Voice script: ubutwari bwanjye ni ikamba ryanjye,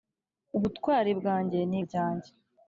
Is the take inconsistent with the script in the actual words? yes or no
yes